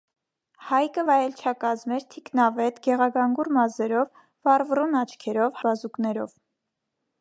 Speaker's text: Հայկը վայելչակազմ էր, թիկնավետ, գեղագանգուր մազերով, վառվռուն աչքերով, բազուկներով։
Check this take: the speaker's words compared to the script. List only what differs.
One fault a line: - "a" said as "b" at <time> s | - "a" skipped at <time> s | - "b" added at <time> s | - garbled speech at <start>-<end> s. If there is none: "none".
none